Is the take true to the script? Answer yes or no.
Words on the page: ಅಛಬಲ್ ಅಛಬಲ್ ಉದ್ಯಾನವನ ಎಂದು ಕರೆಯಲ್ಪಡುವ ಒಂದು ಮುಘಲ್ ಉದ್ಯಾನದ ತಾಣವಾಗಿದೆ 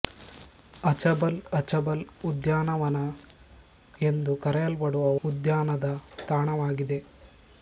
no